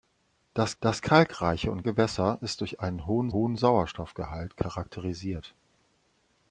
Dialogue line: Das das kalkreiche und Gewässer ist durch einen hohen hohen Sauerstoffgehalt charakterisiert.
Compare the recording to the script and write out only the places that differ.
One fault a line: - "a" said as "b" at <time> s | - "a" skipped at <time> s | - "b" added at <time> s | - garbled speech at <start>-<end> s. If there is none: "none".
none